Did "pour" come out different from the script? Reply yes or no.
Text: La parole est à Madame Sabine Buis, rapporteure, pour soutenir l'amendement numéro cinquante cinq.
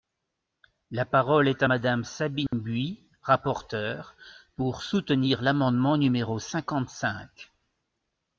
no